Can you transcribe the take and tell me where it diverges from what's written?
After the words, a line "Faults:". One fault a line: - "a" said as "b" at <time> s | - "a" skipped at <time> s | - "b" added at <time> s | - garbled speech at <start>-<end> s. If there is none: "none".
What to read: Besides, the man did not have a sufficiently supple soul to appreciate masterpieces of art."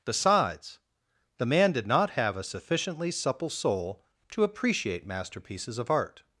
Besides, the man did not have a sufficiently supple soul to appreciate masterpieces of art."
Faults:
none